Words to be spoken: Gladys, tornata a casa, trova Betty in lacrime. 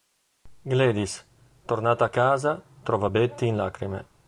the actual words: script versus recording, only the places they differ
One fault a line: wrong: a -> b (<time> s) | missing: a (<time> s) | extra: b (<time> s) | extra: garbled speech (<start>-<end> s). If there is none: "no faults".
no faults